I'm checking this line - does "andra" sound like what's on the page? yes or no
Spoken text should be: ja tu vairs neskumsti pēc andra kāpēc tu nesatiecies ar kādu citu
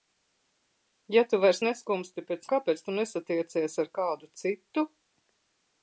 no